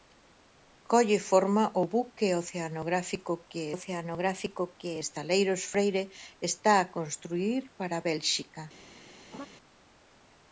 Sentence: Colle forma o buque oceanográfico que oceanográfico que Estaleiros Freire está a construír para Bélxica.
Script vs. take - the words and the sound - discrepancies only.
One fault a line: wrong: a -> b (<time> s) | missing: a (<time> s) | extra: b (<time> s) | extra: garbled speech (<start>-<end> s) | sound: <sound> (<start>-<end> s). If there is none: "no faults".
sound: laugh (9.3-9.5 s)